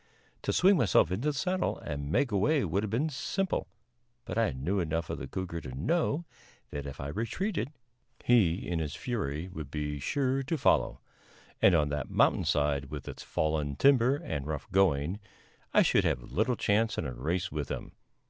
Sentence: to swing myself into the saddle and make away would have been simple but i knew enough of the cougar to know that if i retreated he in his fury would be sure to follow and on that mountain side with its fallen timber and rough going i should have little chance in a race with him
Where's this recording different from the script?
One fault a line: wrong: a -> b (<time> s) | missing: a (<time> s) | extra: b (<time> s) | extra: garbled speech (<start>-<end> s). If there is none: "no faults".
no faults